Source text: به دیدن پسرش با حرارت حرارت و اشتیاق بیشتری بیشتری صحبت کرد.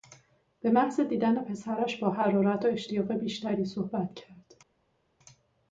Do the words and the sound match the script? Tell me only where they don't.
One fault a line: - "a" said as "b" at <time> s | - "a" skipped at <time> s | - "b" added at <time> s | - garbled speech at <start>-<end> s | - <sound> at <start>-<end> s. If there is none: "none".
- "محض" added at 0.7 s
- "حرارت" skipped at 2.6 s
- "بیشتری" skipped at 3.6 s